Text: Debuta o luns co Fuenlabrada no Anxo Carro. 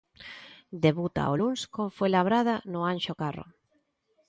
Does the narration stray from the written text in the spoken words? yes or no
no